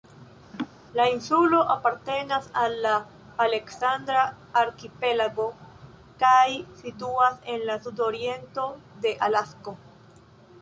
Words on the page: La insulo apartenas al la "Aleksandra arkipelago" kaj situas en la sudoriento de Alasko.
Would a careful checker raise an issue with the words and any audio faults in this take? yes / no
yes